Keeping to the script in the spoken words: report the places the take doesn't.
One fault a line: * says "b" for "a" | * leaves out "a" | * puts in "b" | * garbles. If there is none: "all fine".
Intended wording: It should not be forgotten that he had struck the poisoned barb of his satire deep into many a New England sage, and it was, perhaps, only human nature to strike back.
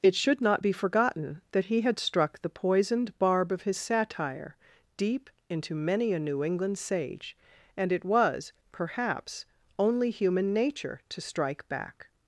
all fine